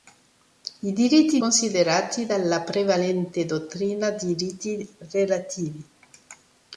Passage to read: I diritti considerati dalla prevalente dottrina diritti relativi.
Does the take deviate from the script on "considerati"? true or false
false